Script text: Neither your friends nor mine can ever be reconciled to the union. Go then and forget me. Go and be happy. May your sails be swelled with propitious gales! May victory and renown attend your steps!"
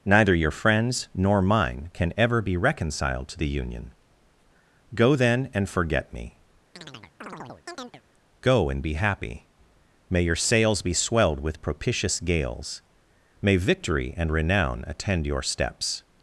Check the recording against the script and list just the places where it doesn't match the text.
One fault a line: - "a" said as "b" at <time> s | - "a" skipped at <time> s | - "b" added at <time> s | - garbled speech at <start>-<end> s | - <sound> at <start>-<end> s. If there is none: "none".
- chirp at 6.8-8.0 s